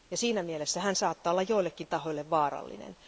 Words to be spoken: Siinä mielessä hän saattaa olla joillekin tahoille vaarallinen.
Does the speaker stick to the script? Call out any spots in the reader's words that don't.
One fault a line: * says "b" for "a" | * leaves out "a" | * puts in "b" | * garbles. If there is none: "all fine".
all fine